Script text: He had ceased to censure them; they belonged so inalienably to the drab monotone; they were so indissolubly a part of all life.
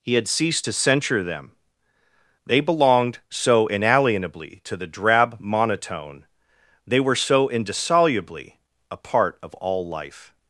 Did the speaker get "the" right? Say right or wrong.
right